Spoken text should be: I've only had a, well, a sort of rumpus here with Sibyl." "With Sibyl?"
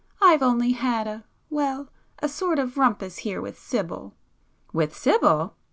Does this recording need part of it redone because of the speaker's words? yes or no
no